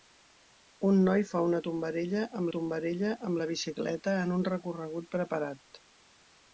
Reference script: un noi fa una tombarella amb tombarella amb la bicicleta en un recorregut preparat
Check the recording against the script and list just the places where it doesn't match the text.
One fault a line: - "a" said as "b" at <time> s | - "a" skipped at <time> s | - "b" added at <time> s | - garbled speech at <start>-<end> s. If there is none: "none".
none